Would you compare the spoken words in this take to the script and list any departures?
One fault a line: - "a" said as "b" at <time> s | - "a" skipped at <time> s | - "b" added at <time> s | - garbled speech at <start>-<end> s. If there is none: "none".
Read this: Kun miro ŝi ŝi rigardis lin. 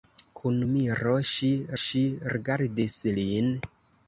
none